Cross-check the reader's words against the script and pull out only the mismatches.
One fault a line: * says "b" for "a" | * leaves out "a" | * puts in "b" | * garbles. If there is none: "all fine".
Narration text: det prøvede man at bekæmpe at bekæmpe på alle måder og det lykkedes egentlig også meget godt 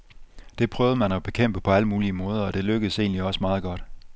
* leaves out "at bekæmpe"
* puts in "mulige"